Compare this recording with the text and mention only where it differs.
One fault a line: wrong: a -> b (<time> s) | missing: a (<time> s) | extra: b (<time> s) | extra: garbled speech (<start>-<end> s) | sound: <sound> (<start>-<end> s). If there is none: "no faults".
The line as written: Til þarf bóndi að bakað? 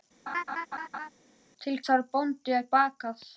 sound: laugh (0.3-1.1 s)